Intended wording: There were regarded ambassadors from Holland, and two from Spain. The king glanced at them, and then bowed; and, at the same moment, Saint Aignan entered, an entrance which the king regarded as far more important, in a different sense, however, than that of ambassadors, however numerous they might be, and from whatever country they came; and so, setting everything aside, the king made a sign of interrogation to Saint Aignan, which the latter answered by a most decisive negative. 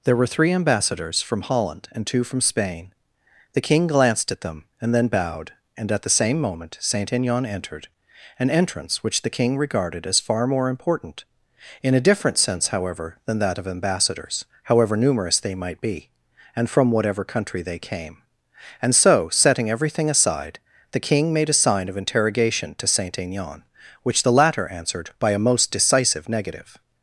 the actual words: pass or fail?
fail